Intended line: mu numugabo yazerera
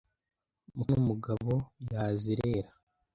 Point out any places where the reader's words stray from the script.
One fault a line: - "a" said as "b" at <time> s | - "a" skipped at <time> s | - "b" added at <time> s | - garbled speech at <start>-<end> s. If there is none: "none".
none